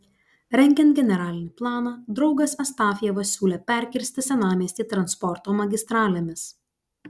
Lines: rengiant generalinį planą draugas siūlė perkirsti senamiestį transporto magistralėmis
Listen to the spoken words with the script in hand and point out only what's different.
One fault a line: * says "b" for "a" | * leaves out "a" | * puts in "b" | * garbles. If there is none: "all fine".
* puts in "astafjevas"